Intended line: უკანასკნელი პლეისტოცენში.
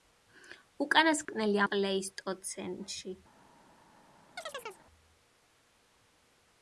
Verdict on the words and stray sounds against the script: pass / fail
fail